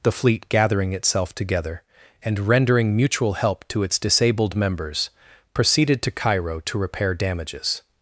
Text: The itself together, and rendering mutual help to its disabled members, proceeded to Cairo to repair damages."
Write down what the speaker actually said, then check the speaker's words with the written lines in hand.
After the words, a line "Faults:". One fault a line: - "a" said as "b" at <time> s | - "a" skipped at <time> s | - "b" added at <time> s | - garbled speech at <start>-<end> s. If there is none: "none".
The fleet, gathering itself together, and rendering mutual help to its disabled members, proceeded to Cairo to repair damages."
Faults:
- "fleet gathering" added at 0.1 s